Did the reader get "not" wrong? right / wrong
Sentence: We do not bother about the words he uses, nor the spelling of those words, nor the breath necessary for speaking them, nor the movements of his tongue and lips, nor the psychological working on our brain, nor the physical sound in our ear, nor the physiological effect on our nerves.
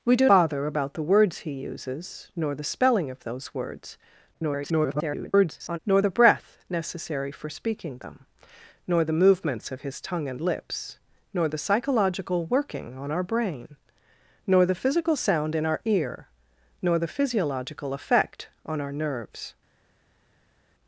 wrong